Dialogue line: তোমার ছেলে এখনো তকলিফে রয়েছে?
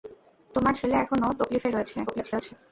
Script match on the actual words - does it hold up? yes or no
no